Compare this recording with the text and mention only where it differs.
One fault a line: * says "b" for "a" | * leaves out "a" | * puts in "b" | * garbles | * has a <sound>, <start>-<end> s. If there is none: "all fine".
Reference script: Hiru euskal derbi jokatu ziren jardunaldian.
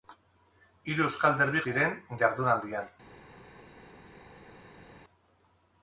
* leaves out "jokatu"